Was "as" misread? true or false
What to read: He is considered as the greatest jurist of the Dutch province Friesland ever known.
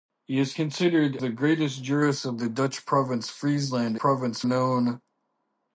true